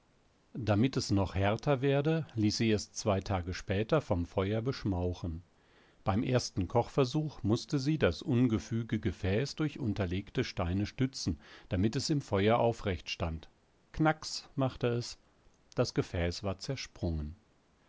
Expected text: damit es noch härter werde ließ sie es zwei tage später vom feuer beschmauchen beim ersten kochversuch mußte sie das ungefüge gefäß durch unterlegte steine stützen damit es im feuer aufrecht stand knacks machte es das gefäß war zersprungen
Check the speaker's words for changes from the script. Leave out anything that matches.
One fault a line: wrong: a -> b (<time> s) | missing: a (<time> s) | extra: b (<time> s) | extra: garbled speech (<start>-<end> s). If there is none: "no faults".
no faults